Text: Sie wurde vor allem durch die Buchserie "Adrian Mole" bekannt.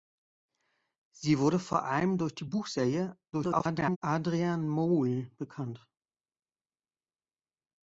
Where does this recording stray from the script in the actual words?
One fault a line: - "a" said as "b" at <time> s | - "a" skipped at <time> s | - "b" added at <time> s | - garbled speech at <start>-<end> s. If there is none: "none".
- garbled speech at 3.3-4.0 s